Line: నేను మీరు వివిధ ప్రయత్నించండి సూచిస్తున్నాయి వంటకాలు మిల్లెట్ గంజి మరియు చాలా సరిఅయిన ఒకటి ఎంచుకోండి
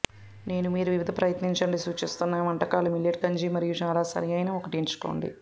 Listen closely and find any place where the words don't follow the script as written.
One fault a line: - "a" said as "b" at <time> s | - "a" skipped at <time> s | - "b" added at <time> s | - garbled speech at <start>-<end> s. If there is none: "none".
none